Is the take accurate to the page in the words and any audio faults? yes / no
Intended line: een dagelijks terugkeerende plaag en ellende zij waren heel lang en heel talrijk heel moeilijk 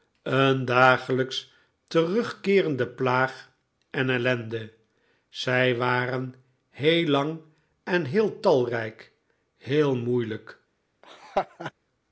no